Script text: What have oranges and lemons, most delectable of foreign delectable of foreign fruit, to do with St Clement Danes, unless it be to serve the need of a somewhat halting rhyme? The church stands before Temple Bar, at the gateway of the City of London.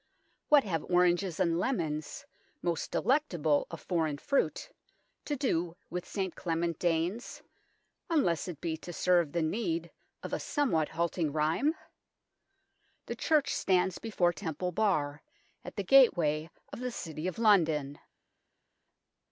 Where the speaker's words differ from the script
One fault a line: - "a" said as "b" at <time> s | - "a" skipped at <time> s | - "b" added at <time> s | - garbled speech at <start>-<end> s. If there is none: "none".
- "delectable of foreign" skipped at 4.2 s